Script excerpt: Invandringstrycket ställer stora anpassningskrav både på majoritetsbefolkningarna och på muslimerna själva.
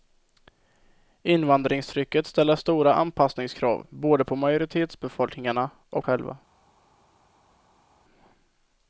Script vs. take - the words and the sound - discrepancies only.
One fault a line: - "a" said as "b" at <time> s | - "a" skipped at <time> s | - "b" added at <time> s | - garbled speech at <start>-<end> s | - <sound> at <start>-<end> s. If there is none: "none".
- "på muslimerna" skipped at 6.0 s